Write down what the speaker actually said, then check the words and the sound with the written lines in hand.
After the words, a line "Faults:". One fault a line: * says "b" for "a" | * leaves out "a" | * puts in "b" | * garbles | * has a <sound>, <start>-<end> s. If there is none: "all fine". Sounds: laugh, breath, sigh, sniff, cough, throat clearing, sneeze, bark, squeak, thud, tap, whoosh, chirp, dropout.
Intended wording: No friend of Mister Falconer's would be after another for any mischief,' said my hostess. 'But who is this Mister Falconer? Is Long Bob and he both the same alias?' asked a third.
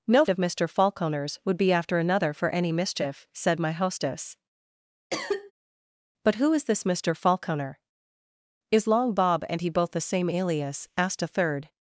No of Mister Falconer's would be after another for any mischief,' said my hostess. 'But who is this Mister Falconer? Is Long Bob and he both the same alias?' asked a third.
Faults:
* leaves out "friend"
* has a cough, 5.1-5.5 s